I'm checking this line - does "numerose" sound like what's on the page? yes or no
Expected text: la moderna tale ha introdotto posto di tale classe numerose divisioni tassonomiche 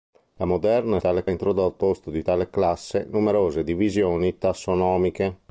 yes